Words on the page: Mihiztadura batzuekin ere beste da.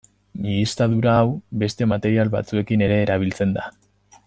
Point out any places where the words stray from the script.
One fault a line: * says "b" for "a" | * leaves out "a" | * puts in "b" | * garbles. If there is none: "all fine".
* puts in "hau beste material"
* says "erabiltzen" for "beste"